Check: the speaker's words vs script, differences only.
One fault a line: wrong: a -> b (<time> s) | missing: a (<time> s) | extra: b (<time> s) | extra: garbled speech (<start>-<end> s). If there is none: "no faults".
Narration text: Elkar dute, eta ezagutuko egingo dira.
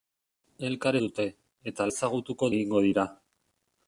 no faults